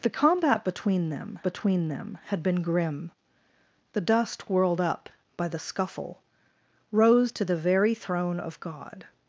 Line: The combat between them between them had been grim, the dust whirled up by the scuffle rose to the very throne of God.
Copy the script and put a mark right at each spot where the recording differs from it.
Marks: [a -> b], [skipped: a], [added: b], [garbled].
The combat between them between them had been grim, the dust whirled up by the scuffle rose to the very throne of God.